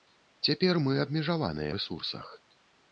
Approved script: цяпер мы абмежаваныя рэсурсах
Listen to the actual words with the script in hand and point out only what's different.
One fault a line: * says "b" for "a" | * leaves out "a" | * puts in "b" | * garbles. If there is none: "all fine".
all fine